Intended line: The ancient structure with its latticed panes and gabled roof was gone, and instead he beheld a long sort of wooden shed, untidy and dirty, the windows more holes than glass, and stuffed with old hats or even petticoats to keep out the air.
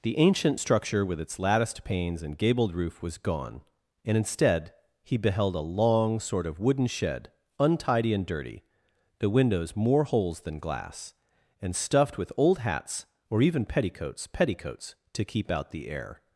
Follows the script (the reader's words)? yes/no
no